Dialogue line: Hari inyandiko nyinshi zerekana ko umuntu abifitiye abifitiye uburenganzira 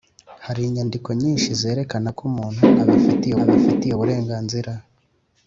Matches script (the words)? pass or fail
pass